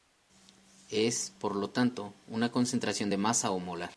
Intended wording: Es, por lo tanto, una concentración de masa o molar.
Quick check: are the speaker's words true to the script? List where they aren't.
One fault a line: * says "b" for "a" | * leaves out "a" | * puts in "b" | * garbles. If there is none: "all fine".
all fine